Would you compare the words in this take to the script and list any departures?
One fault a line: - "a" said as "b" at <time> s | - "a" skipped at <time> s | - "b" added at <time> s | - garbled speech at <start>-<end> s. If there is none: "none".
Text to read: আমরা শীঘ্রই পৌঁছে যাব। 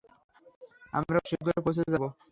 none